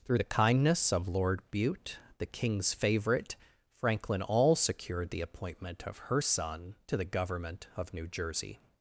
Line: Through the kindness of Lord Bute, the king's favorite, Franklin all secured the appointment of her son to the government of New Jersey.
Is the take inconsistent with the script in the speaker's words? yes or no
no